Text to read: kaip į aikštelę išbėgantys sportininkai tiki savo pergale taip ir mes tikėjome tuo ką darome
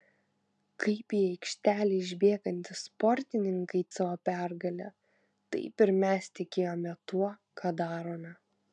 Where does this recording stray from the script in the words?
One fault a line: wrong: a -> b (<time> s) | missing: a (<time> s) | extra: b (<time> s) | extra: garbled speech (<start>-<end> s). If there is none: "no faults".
missing: tiki (3.8 s)